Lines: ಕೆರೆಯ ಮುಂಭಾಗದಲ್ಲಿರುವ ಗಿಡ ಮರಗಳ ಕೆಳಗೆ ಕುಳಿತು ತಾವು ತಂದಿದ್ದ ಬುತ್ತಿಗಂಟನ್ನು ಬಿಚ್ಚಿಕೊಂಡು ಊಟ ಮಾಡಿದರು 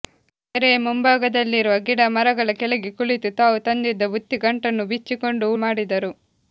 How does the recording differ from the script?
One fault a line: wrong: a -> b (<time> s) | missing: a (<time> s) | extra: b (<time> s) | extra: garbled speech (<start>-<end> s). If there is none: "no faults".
missing: ಊಟ (5.5 s)